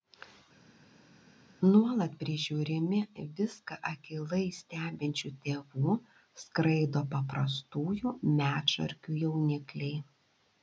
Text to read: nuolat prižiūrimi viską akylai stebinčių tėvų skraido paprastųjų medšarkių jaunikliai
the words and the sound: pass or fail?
pass